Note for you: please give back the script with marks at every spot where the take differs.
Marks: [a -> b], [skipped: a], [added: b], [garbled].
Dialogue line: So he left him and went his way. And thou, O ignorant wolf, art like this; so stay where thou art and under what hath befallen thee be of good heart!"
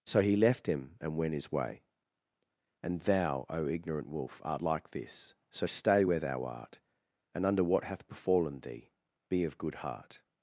So he left him and went his way. And thou, O ignorant wolf, art like this; so stay where thou art and under what hath befallen thee be of good heart!"